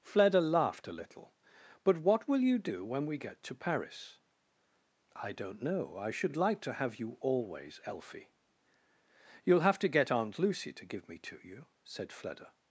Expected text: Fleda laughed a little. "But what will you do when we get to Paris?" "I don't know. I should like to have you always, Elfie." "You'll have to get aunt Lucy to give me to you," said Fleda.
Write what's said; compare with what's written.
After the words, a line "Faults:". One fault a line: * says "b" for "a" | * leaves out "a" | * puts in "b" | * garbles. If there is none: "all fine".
Fleda laughed a little. "But what will you do when we get to Paris?" "I don't know. I should like to have you always, Elfie." "You'll have to get aunt Lucy to give me to you," said Fleda.
Faults:
all fine